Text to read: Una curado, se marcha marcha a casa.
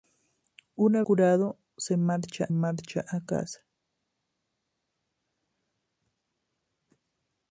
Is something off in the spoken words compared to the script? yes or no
no